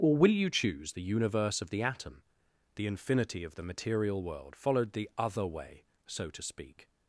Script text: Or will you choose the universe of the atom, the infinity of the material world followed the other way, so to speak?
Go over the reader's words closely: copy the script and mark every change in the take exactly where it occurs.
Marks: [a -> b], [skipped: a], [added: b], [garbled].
Or will you choose the universe of the atom, the infinity of the material world followed the other way, so to speak?